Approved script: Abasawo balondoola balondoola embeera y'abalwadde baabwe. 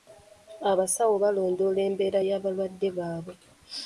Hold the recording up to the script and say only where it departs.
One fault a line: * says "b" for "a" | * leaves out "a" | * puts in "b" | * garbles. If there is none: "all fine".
* leaves out "balondoola"